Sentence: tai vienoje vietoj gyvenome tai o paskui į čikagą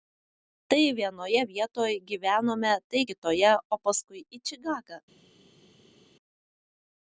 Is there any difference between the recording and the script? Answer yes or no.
yes